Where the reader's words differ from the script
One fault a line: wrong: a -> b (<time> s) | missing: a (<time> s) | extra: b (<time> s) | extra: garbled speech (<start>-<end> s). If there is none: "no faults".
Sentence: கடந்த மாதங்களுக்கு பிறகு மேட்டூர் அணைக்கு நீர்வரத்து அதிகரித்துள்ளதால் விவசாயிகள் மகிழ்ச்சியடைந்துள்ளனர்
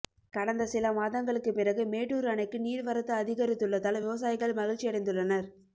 extra: சில (0.7 s)